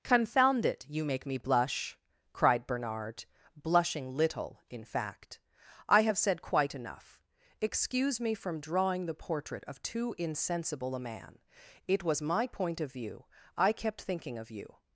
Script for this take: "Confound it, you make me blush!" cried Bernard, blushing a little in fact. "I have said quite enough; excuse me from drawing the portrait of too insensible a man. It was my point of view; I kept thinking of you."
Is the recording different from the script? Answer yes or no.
yes